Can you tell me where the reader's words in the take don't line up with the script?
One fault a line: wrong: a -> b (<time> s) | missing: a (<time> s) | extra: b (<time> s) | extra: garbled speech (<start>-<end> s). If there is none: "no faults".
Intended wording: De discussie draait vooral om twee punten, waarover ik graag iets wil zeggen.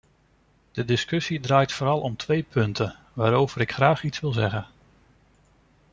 no faults